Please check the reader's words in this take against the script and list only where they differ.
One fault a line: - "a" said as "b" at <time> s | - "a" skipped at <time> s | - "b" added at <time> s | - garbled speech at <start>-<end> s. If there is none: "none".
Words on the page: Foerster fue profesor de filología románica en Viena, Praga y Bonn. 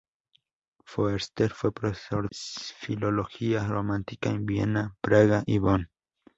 - "de" skipped at 2.3 s